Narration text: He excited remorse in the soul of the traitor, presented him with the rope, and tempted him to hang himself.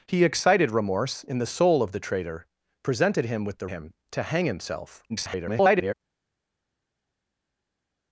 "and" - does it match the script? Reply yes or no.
no